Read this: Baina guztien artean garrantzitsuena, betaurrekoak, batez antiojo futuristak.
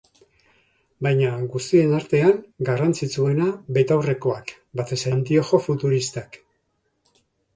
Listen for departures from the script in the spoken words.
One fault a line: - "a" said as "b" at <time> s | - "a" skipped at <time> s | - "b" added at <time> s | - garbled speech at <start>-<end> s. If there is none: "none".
none